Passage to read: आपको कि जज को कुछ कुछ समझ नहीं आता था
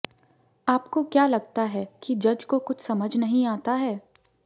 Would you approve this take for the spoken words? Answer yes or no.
no